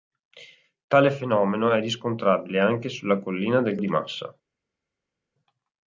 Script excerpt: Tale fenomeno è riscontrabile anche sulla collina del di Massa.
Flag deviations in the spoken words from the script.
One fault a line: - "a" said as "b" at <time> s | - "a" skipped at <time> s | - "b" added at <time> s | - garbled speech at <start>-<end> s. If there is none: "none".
none